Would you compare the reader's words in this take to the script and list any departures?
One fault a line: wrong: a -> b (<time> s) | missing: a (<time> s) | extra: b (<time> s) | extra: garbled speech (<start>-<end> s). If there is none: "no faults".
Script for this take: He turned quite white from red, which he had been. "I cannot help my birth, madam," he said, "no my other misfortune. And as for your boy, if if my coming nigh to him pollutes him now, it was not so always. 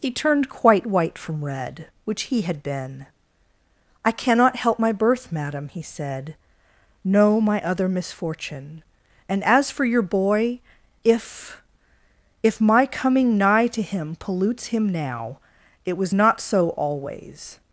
no faults